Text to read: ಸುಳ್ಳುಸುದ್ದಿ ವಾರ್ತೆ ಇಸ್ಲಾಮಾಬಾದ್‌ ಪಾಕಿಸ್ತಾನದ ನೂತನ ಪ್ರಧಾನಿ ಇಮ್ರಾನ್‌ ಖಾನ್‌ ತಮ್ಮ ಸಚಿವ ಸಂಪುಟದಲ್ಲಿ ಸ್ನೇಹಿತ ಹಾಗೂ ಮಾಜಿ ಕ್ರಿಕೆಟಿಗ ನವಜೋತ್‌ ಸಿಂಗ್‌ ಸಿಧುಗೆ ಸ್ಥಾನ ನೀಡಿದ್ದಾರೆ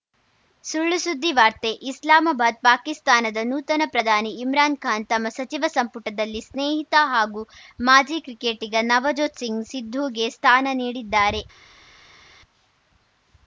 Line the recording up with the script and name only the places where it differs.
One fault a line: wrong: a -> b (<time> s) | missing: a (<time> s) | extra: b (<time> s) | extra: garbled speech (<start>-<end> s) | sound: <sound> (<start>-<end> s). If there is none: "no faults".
no faults